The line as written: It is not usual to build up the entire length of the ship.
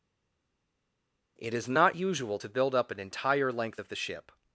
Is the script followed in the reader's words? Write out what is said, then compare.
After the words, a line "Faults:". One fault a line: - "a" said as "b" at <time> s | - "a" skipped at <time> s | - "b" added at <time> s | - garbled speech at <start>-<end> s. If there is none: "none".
It is not usual to build up an entire length of the ship.
Faults:
- "the" said as "an" at 2.9 s